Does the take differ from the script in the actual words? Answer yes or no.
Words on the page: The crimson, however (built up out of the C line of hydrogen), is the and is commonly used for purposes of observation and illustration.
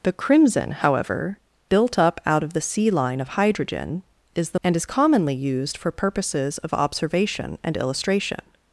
no